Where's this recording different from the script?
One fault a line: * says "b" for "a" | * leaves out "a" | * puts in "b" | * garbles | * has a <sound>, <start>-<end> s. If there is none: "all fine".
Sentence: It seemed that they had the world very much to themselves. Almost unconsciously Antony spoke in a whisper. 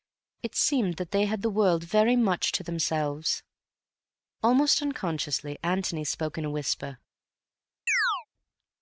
* has a chirp, 7.9-8.3 s